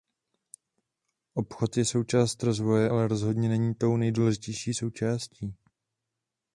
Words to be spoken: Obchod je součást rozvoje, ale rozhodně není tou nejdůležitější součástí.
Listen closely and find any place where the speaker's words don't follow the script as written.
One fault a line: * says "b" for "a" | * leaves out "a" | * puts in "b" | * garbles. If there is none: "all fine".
all fine